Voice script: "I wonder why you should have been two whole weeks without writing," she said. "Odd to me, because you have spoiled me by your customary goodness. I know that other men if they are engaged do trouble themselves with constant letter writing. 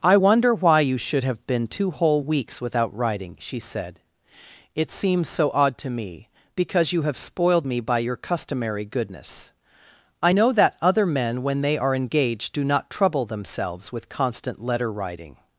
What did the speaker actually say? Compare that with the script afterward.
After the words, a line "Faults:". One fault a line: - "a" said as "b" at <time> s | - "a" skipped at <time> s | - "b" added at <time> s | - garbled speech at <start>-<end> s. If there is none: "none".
"I wonder why you should have been two whole weeks without writing," she said. "It seems so odd to me, because you have spoiled me by your customary goodness. I know that other men when they are engaged do not trouble themselves with constant letter writing.
Faults:
- "It seems so" added at 4.7 s
- "if" said as "when" at 11.4 s
- "not" added at 12.6 s